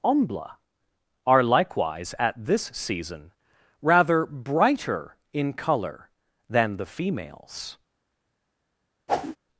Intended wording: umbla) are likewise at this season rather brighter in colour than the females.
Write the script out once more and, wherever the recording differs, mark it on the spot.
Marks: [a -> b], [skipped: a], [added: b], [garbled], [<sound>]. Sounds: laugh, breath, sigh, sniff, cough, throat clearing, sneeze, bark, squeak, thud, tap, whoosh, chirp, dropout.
umbla) are likewise at this season rather brighter in colour than the females. [whoosh]